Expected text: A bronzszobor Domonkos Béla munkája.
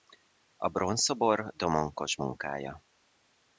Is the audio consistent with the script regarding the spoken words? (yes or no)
no